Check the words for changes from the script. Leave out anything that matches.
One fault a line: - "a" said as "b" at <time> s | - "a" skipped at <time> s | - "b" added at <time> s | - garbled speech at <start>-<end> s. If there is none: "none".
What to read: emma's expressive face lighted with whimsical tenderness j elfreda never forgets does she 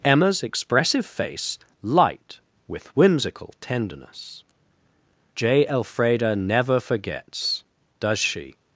- "lighted" said as "light" at 1.8 s